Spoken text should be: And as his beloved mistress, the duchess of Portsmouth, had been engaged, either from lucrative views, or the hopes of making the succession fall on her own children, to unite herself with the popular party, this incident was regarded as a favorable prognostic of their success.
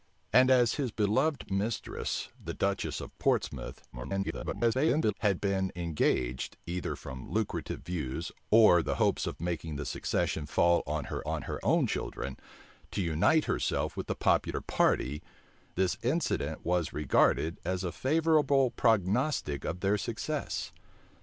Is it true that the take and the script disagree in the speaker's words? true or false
true